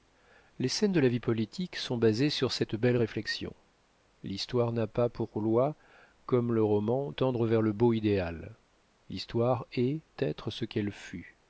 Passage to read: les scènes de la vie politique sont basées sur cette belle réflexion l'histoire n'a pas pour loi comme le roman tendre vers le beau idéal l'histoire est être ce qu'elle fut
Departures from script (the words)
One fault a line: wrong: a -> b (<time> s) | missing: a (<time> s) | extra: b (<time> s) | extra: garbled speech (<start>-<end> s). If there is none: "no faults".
no faults